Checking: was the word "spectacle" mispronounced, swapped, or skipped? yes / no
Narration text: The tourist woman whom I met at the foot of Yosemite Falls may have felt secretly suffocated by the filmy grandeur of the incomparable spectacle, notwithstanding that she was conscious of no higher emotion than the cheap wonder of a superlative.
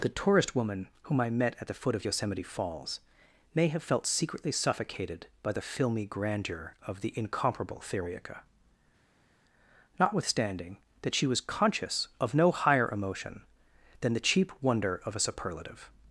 yes